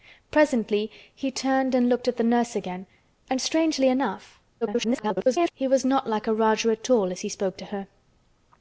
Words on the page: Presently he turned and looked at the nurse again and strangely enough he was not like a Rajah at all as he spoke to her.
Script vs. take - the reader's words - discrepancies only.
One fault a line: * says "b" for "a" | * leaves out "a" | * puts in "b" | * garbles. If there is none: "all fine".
* garbles